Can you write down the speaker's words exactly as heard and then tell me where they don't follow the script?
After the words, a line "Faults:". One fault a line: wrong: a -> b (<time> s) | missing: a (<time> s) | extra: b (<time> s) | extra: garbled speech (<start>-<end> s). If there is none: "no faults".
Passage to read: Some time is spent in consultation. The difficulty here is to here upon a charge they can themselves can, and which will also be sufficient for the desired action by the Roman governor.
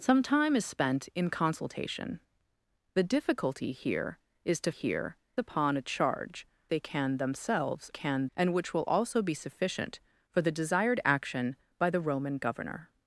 Some time is spent in consultation. The difficulty here is to here upon a charge they can themselves can, and which will also be sufficient for the desired action by the Roman governor.
Faults:
no faults